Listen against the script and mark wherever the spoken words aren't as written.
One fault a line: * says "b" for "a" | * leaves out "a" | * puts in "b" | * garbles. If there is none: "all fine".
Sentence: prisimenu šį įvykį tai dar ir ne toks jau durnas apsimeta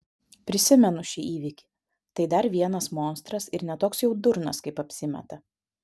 * puts in "vienas monstras"
* puts in "kaip"